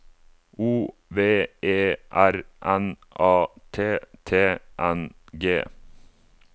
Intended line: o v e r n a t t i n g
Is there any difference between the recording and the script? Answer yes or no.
yes